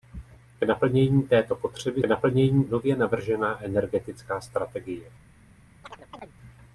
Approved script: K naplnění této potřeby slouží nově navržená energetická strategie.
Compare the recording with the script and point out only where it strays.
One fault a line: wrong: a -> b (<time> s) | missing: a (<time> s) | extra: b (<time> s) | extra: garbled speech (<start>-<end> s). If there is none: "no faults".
wrong: slouží -> naplnění (2.0 s)